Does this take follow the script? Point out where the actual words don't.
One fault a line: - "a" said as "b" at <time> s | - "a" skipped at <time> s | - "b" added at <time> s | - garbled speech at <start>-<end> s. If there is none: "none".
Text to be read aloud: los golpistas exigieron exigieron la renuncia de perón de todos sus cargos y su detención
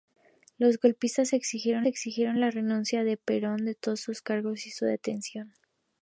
none